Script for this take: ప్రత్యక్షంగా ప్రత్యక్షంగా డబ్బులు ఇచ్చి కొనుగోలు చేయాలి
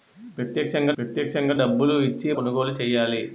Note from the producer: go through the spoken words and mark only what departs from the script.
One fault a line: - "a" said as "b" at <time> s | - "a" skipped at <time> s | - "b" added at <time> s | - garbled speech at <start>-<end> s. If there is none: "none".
none